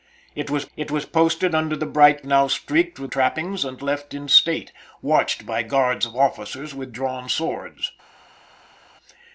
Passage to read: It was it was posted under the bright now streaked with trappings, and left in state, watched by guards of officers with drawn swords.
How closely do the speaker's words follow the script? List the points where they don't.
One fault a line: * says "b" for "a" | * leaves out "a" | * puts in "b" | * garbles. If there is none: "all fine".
all fine